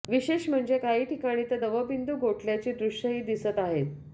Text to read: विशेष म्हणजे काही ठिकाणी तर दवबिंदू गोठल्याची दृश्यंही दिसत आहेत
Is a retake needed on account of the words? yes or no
no